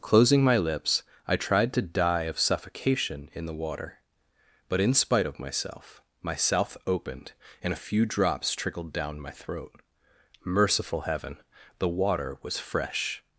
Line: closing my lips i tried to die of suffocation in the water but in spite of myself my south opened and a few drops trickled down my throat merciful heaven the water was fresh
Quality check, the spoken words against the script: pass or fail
pass